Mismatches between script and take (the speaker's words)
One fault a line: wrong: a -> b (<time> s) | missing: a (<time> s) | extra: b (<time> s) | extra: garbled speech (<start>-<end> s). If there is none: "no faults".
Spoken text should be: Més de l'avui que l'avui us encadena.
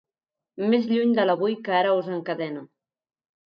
extra: lluny (0.9 s)
wrong: l'avui -> ara (1.8 s)